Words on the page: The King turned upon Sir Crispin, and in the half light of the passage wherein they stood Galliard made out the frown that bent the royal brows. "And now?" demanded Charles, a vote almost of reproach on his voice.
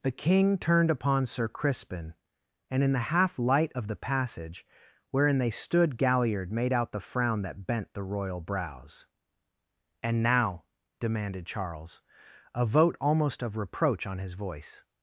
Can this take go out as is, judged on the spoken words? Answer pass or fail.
pass